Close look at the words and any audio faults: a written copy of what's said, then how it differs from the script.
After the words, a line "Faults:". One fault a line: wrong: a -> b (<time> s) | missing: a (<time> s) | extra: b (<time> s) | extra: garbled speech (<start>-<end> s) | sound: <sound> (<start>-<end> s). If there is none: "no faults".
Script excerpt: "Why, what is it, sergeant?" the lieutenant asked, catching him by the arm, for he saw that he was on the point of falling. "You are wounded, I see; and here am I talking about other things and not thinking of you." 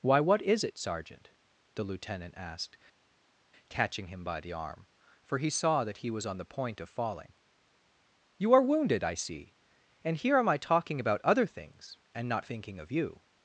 "Why, what is it, sergeant?" the lieutenant asked, catching him by the arm, for he saw that he was on the point of falling. "You are wounded, I see; and here am I talking about other things and not thinking of you."
Faults:
no faults